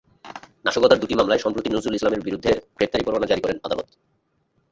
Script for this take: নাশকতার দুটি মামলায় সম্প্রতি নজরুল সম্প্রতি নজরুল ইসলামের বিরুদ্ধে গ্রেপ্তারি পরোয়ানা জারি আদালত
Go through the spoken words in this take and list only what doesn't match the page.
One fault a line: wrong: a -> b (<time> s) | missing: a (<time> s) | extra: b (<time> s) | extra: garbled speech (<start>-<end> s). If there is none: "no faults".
missing: সম্প্রতি নজরুল (1.9 s)
extra: করেন (3.4 s)